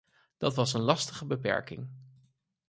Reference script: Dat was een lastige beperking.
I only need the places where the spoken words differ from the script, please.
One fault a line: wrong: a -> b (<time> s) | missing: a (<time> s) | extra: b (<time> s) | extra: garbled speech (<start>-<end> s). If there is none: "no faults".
no faults